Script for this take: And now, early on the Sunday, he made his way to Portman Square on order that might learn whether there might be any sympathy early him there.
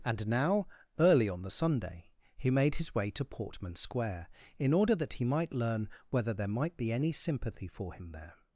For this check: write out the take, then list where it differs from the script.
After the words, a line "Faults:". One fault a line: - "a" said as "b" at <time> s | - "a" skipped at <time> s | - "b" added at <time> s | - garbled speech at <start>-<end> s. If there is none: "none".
And now, early on the Sunday, he made his way to Portman Square in order that he might learn whether there might be any sympathy for him there.
Faults:
- "on" said as "in" at 4.6 s
- "he" added at 5.1 s
- "early" said as "for" at 7.7 s